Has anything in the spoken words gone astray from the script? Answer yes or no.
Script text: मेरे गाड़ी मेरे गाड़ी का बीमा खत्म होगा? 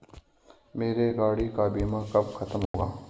yes